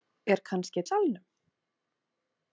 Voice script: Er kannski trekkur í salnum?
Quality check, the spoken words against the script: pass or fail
fail